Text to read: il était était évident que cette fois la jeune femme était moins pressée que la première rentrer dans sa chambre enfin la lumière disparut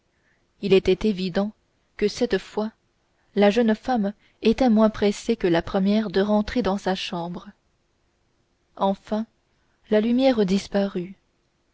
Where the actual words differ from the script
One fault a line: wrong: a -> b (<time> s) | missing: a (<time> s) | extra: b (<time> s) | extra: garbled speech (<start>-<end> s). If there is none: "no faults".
missing: était (1.1 s)
extra: de (6.1 s)